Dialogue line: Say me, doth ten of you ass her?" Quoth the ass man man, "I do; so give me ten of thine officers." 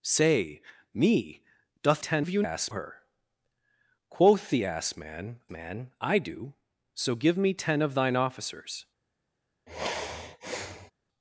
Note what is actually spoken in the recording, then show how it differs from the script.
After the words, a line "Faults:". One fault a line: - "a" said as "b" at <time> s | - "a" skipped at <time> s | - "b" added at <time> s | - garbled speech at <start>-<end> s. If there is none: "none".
Say me, doth ten of you ass her?" Quoth the ass man man, "I do; so give me ten of thine officers."
Faults:
none